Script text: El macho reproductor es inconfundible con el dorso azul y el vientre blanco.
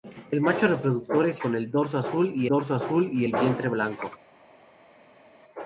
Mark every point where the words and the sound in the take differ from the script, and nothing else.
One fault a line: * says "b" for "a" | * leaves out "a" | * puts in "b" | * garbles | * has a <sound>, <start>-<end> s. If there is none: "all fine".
* leaves out "inconfundible"
* puts in "dorso azul y"